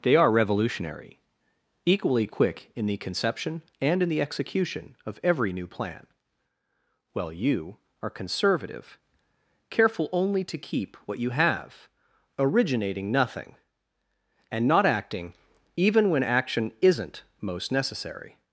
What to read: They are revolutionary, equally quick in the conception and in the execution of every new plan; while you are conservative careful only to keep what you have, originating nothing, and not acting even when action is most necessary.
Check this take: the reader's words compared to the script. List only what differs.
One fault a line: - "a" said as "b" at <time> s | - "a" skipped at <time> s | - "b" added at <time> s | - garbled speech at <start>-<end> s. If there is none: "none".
- "is" said as "isn't" at 16.8 s